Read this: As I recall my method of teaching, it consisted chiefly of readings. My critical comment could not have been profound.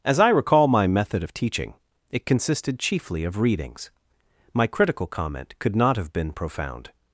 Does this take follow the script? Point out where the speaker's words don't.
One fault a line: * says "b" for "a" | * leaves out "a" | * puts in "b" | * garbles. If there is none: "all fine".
all fine